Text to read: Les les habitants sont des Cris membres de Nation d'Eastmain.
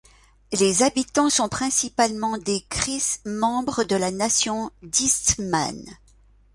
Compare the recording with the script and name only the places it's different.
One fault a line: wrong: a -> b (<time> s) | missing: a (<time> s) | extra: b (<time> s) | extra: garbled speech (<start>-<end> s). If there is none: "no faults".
missing: les (0.8 s)
extra: principalement (1.5 s)
extra: la (4.0 s)